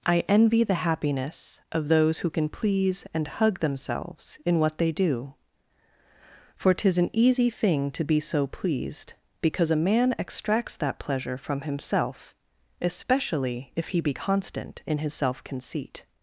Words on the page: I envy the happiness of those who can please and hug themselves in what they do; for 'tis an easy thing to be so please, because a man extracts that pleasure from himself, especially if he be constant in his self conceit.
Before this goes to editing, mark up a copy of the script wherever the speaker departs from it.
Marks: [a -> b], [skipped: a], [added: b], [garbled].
I envy the happiness of those who can please and hug themselves in what they do; for 'tis an easy thing to be so [please, -> pleased] because a man extracts that pleasure from himself, especially if he be constant in his self conceit.